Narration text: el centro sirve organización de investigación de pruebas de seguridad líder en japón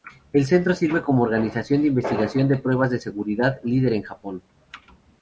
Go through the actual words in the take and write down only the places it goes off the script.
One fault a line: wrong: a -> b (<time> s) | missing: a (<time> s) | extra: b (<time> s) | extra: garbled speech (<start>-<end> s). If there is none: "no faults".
extra: como (1.0 s)